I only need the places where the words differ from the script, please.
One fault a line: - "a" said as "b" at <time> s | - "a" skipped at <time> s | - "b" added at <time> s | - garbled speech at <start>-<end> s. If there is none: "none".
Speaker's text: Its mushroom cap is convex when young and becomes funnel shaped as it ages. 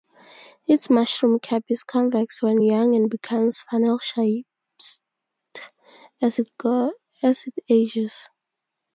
none